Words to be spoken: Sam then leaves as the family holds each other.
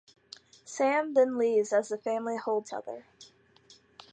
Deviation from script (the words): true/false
true